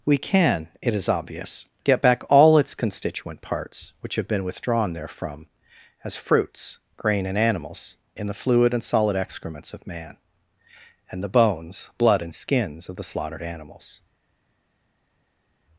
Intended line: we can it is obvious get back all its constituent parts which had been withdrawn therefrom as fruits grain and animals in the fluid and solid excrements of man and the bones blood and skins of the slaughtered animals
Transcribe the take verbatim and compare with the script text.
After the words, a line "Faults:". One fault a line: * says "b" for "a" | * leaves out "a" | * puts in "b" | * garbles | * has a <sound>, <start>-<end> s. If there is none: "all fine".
we can it is obvious get back all its constituent parts which have been withdrawn therefrom as fruits grain and animals in the fluid and solid excrements of man and the bones blood and skins of the slaughtered animals
Faults:
* says "have" for "had"